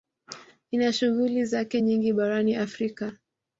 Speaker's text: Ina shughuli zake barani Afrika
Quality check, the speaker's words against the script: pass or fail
fail